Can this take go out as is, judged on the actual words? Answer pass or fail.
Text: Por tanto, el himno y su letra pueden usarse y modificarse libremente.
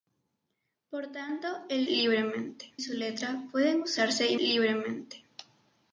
fail